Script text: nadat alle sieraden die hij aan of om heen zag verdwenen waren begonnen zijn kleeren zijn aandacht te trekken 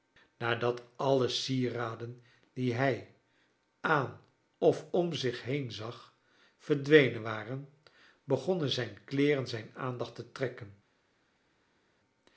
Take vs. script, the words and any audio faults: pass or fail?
fail